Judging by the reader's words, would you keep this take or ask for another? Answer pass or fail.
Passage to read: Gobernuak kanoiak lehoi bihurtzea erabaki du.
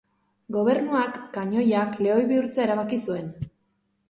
fail